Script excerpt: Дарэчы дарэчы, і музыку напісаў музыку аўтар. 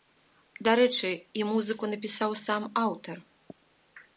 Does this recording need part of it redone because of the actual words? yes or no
yes